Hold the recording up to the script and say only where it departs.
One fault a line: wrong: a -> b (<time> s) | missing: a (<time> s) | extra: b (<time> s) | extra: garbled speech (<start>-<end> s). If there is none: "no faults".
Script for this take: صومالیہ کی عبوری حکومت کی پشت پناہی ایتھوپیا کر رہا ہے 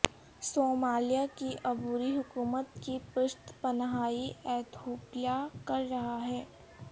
no faults